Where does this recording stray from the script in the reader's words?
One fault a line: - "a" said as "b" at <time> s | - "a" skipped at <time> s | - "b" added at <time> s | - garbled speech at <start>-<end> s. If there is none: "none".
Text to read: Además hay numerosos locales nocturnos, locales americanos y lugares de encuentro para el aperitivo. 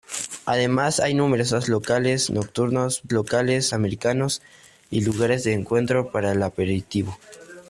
none